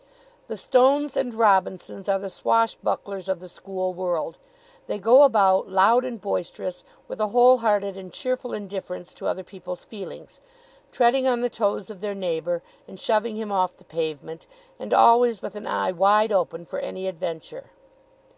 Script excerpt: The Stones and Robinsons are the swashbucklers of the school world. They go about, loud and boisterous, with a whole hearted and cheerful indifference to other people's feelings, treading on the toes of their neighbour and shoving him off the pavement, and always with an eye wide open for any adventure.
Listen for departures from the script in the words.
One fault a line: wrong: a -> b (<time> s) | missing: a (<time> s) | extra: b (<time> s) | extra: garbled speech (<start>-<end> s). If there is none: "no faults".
no faults